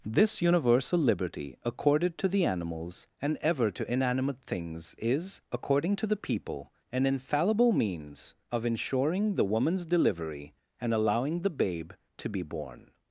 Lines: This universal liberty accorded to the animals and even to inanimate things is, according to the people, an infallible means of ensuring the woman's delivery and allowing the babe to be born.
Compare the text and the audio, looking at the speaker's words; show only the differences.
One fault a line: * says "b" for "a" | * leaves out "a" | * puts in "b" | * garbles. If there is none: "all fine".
* says "ever" for "even"